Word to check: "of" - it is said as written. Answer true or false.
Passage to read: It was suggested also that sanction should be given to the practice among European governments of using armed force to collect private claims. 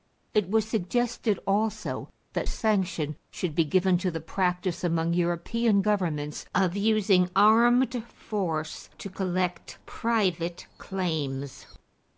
true